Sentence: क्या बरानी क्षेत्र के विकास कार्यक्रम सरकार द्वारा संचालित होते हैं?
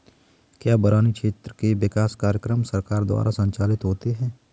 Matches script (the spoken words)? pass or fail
pass